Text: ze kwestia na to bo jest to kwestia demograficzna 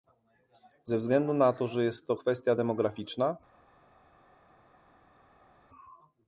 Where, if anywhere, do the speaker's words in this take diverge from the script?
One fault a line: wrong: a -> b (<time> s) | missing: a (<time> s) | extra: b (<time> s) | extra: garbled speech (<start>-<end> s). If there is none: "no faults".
wrong: kwestia -> względu (1.0 s)
wrong: bo -> że (1.7 s)